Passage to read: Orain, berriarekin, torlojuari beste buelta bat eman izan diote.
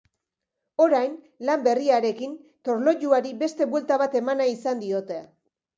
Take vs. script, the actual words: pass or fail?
fail